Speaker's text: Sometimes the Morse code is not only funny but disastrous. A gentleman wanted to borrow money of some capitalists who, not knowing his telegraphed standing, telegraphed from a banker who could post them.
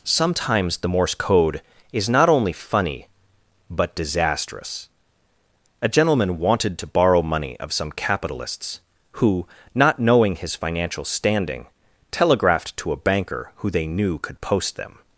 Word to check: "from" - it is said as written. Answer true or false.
false